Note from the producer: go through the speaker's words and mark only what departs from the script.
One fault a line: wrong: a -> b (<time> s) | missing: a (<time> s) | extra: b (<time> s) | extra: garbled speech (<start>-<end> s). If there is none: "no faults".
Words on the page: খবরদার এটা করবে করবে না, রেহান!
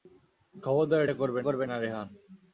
no faults